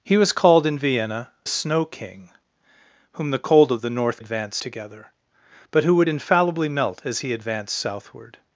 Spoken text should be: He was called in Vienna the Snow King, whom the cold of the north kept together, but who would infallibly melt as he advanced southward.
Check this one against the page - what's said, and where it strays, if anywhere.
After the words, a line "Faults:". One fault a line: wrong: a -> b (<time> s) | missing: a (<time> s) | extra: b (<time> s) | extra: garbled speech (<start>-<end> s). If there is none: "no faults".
He was called in Vienna Snow King, whom the cold of the north advanced together, but who would infallibly melt as he advanced southward.
Faults:
missing: the (1.3 s)
wrong: kept -> advanced (4.2 s)